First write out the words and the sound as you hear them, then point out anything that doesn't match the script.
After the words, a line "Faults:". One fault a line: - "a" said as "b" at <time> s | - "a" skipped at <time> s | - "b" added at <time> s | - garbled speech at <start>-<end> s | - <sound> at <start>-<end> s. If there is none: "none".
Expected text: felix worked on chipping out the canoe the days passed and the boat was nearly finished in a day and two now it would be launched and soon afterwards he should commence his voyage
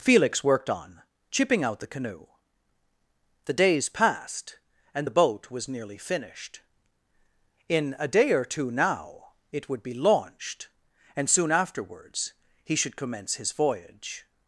felix worked on chipping out the canoe the days passed and the boat was nearly finished in a day or two now it would be launched and soon afterwards he should commence his voyage
Faults:
- "and" said as "or" at 8.3 s